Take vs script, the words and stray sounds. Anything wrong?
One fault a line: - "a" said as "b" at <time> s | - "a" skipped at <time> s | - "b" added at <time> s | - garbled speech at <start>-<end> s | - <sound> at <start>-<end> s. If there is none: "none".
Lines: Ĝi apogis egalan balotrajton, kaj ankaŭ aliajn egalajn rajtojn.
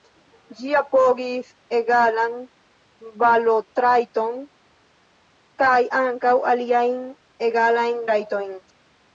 none